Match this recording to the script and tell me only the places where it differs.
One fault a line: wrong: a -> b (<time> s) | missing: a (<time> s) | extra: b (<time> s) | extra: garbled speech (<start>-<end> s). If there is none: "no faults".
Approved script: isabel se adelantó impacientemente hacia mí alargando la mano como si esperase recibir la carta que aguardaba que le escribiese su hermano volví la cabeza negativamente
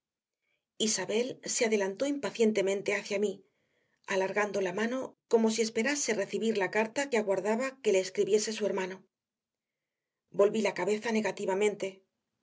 no faults